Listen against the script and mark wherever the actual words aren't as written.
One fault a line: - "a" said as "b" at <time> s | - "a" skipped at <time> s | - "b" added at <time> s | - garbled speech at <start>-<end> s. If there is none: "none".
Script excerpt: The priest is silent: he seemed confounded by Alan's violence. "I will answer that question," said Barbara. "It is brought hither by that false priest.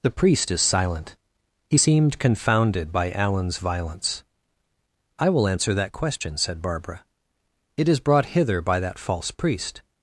none